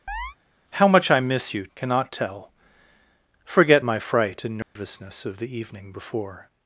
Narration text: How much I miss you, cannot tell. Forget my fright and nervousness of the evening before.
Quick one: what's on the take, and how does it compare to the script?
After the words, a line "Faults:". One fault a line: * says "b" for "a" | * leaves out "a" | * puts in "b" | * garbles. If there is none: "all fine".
How much I miss you, cannot tell. Forget my fright and nervousness of the evening before.
Faults:
all fine